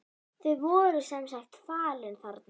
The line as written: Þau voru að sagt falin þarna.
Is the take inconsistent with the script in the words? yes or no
yes